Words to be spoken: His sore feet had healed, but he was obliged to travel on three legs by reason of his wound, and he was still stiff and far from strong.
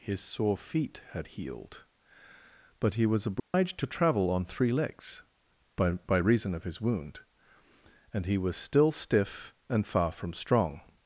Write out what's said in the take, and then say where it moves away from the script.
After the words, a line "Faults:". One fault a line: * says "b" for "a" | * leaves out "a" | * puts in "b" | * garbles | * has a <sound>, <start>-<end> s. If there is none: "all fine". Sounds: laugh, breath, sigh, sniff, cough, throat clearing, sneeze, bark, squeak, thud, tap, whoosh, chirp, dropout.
His sore feet had healed, but he was obliged to travel on three legs by by reason of his wound, and he was still stiff and far from strong.
Faults:
* has a dropout, 3.4-3.5 s
* puts in "by"